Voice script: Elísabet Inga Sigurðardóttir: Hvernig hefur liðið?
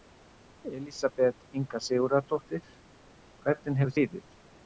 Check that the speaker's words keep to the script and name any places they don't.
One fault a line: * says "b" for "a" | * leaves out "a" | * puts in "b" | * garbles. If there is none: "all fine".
all fine